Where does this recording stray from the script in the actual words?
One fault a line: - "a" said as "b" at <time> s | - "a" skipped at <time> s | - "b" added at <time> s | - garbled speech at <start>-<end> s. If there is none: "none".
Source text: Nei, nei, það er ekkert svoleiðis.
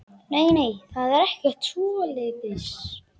none